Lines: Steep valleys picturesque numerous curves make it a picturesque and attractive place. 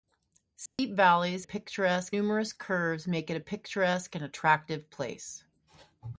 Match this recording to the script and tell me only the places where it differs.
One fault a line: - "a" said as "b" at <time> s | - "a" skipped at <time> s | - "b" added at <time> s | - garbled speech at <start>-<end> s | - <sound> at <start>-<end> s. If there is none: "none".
- dropout at 0.7-0.8 s